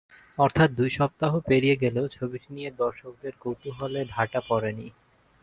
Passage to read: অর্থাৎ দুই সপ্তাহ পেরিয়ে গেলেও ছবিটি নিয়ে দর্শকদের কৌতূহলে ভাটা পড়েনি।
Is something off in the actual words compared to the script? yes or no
no